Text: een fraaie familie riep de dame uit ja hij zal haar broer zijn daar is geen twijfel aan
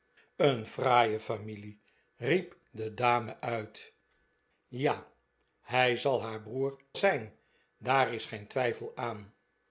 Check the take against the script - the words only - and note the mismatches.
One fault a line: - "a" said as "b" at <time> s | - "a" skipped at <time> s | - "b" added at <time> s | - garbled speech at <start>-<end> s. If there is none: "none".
none